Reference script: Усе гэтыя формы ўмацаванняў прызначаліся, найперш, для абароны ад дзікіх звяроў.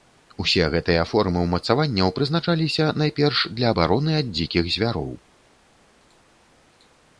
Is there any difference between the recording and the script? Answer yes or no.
no